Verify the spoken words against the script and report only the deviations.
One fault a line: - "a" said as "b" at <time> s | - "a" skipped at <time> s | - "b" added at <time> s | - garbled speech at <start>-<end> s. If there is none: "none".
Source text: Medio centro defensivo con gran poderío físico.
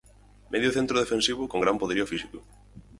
none